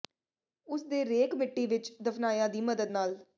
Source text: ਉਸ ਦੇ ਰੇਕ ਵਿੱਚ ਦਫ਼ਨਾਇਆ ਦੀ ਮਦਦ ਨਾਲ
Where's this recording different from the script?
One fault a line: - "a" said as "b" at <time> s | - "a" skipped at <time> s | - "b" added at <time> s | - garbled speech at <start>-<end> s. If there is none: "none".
- "ਮਿੱਟੀ" added at 1.4 s